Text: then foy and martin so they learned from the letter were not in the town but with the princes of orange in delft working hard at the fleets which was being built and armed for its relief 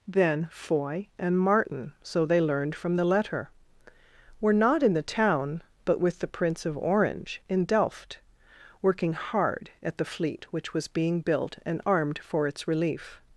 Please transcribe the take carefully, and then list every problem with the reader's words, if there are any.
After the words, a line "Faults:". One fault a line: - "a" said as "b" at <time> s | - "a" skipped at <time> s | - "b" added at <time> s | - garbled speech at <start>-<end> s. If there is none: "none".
then foy and martin so they learned from the letter were not in the town but with the prince of orange in delft working hard at the fleet which was being built and armed for its relief
Faults:
- "princes" said as "prince" at 6.3 s
- "fleets" said as "fleet" at 10.0 s